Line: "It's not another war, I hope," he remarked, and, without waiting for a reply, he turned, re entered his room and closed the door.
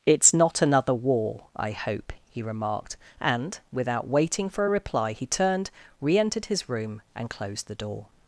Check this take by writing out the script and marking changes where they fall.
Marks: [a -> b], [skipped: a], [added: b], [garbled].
"It's not another war, I hope," he remarked, and, without waiting for a reply, he turned, re entered his room and closed the door.